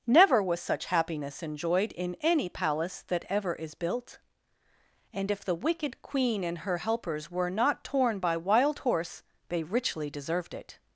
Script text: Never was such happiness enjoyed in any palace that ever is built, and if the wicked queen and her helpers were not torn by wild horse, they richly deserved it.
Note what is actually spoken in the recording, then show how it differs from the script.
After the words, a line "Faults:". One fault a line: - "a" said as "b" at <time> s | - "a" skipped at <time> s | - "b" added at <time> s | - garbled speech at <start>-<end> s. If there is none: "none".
Never was such happiness enjoyed in any palace that ever is built, and if the wicked queen and her helpers were not torn by wild horse, they richly deserved it.
Faults:
none